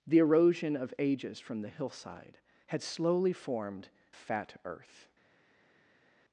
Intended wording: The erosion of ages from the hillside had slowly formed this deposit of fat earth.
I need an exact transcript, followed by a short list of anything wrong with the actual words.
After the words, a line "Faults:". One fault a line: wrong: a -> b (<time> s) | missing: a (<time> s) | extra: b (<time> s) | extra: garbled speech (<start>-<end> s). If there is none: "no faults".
The erosion of ages from the hillside had slowly formed fat earth.
Faults:
missing: this deposit of (3.9 s)